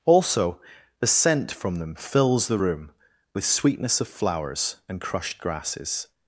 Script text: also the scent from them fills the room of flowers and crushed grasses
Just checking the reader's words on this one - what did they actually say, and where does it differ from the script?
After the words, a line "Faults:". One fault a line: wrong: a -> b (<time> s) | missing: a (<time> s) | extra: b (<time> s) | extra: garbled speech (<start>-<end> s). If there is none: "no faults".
also the scent from them fills the room with sweetness of flowers and crushed grasses
Faults:
extra: with sweetness (3.3 s)